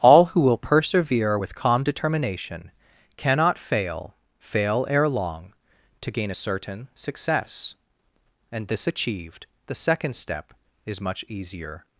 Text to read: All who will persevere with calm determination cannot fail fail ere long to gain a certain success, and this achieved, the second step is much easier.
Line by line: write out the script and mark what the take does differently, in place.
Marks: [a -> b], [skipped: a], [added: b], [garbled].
All who will persevere with calm determination cannot fail fail ere long to gain a certain success, and this achieved, the second step is much easier.